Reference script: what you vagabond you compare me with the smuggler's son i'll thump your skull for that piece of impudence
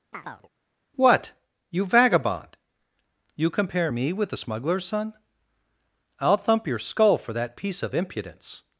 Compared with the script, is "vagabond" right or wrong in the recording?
right